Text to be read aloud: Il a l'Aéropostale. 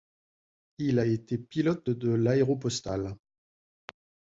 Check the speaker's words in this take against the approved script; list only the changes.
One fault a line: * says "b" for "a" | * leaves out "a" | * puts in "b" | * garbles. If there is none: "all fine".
* puts in "été pilote de"